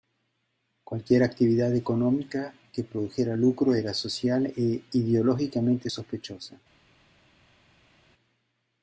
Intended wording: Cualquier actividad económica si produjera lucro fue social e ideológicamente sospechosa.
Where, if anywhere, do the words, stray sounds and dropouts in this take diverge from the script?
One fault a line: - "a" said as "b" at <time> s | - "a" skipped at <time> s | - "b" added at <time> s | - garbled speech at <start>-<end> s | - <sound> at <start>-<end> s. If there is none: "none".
- "si" said as "que" at 2.7 s
- "fue" said as "era" at 3.7 s